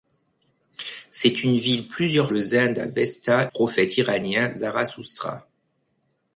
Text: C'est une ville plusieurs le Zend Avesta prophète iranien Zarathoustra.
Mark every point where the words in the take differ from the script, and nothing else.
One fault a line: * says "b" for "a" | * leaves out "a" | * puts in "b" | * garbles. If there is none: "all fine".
all fine